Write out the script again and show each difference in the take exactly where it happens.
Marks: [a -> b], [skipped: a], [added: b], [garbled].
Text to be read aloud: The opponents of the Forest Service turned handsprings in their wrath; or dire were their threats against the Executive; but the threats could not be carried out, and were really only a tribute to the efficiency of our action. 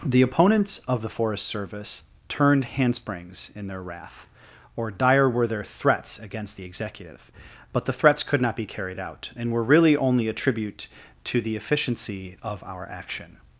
The opponents of the Forest Service turned handsprings in their wrath; or dire were their threats against the Executive; but the threats could not be carried out, and were really only a tribute to the efficiency of our action.